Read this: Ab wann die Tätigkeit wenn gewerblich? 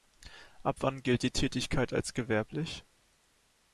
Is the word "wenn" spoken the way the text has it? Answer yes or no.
no